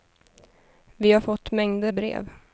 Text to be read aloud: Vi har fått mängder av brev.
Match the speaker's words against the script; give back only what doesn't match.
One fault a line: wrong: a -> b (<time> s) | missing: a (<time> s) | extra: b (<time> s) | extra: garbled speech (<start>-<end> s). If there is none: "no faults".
missing: av (1.9 s)